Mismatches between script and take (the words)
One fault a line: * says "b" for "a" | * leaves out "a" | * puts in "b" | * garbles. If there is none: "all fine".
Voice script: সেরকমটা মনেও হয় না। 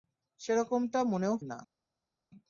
* leaves out "হয়"